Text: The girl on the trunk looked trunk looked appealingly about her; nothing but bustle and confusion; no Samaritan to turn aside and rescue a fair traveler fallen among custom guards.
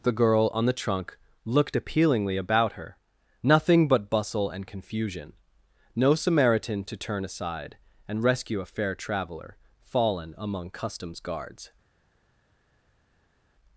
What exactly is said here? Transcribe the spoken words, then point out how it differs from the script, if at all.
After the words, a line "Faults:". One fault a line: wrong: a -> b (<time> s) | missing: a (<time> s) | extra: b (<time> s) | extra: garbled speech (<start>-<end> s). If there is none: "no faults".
The girl on the trunk looked appealingly about her; nothing but bustle and confusion; no Samaritan to turn aside and rescue a fair traveler fallen among customs guards.
Faults:
missing: trunk looked (1.8 s)
wrong: custom -> customs (10.7 s)